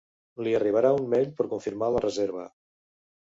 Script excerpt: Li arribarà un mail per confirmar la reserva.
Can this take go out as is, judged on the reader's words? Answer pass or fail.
pass